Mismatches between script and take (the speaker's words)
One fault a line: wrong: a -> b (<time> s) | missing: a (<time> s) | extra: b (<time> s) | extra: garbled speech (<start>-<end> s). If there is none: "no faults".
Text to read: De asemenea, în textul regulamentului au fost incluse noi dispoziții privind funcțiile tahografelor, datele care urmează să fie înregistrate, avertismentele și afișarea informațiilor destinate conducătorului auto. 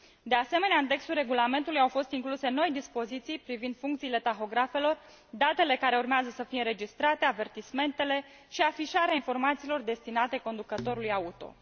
no faults